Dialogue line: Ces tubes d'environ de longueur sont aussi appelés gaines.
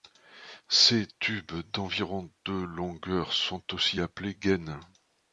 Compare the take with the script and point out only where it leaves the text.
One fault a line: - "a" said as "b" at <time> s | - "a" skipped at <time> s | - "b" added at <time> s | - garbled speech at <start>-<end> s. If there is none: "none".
none